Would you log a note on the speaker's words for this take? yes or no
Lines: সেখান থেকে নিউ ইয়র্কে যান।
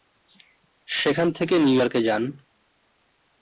no